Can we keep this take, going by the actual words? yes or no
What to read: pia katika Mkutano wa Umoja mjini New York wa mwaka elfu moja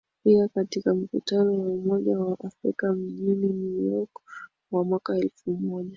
no